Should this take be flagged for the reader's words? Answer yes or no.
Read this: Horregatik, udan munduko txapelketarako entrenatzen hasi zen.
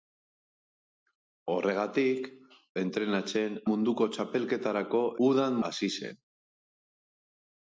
yes